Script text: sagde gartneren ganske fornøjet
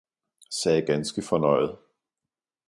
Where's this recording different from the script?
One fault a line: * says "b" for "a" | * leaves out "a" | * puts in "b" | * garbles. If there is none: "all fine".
* leaves out "gartneren"